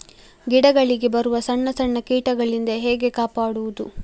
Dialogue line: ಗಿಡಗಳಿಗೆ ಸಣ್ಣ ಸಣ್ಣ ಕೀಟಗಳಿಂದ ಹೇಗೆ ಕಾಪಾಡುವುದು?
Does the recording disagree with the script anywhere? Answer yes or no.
yes